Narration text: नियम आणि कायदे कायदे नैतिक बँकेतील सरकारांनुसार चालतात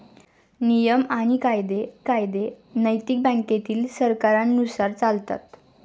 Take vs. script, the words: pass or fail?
pass